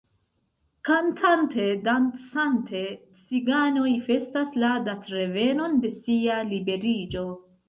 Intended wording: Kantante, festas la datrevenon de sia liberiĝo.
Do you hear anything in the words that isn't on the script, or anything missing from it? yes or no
yes